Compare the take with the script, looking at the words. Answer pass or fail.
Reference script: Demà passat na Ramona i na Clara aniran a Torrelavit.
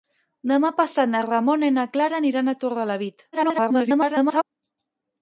fail